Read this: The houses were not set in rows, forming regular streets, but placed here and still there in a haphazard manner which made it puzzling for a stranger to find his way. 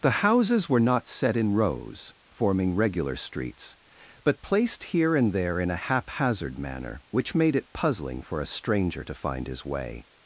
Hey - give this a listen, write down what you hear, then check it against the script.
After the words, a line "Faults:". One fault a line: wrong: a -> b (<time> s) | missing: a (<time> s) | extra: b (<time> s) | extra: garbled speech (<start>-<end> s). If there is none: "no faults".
The houses were not set in rows, forming regular streets, but placed here and there in a haphazard manner which made it puzzling for a stranger to find his way.
Faults:
missing: still (5.3 s)